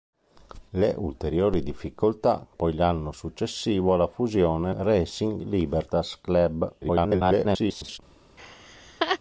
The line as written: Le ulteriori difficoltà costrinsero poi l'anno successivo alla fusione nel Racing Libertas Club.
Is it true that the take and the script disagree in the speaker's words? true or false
true